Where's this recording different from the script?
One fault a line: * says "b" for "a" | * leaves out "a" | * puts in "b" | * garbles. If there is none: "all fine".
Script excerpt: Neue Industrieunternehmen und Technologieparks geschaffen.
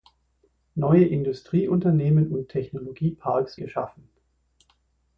all fine